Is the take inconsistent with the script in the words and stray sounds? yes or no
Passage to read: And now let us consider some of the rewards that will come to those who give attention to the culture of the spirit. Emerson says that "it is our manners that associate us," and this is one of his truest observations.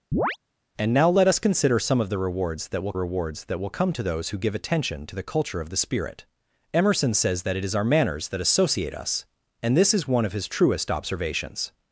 yes